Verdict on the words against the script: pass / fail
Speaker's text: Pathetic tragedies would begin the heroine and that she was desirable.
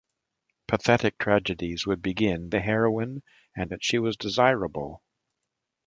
pass